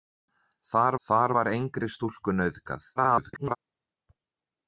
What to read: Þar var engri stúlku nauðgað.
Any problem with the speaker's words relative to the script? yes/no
yes